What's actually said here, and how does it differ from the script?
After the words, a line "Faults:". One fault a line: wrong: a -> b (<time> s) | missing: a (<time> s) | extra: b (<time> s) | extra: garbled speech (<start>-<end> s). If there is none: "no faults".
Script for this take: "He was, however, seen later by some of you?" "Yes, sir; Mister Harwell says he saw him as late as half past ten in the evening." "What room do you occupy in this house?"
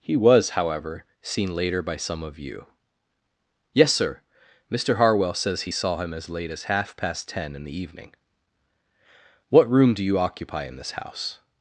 "He was, however, seen later by some of you?" "Yes, sir; Mister Harwell says he saw him as late as half past ten in the evening." "What room do you occupy in this house?"
Faults:
no faults